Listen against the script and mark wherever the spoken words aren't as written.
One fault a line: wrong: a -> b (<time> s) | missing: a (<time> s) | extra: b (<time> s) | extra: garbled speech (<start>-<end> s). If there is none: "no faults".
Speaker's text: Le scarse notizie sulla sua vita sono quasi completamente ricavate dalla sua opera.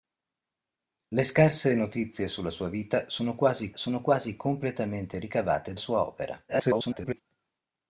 extra: sono quasi (3.7 s)
missing: dalla (5.7 s)
extra: garbled speech (6.5-7.2 s)